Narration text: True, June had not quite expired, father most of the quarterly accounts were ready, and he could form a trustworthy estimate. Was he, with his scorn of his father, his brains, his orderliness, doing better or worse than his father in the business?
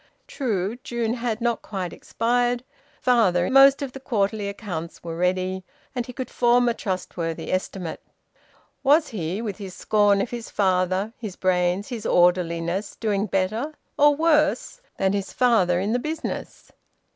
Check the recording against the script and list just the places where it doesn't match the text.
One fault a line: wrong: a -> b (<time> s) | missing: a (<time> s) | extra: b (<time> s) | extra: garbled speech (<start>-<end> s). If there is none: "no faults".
no faults